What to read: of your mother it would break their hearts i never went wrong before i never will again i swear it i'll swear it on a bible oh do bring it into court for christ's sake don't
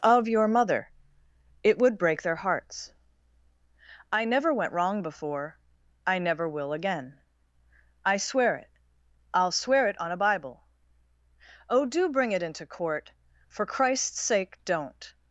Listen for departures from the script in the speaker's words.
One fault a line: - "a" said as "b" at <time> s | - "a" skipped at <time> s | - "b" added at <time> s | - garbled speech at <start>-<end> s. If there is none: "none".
none